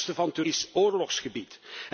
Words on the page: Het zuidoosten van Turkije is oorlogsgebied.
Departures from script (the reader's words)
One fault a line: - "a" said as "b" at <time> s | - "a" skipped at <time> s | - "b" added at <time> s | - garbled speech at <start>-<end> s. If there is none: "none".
- "van Turkije" skipped at 0.4 s